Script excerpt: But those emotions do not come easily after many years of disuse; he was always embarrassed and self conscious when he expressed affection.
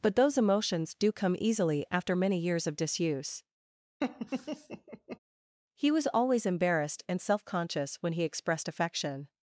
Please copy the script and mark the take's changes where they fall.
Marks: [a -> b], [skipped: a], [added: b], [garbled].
But those emotions do [skipped: not] come easily after many years of disuse; he was always embarrassed and self conscious when he expressed affection.